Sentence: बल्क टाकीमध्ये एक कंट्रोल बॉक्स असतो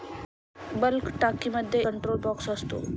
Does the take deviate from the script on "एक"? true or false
true